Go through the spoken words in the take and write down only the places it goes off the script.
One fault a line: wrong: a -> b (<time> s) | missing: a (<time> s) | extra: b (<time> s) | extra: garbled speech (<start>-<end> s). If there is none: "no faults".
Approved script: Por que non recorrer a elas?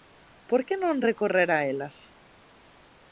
no faults